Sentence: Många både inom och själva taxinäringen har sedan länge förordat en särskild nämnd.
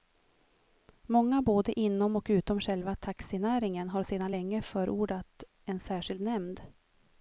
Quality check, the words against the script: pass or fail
fail